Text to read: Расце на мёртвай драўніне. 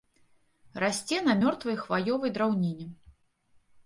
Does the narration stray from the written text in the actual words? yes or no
yes